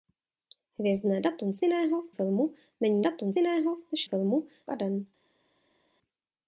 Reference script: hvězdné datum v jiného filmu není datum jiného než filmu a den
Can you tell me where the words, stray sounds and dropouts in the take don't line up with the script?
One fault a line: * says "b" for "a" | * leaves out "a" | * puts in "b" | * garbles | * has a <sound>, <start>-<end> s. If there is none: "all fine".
all fine